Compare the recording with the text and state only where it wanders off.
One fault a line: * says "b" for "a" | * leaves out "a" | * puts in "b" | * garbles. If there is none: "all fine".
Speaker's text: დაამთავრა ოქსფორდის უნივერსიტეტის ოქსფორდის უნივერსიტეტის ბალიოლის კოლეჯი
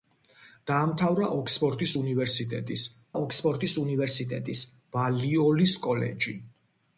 all fine